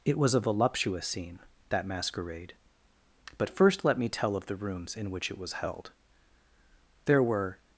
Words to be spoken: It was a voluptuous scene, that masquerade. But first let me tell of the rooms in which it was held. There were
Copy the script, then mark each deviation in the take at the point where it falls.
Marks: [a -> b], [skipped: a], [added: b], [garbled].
It was a voluptuous scene, that masquerade. But first let me tell of the rooms in which it was held. There were